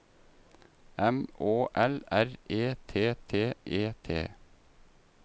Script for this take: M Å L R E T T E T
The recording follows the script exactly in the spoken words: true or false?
true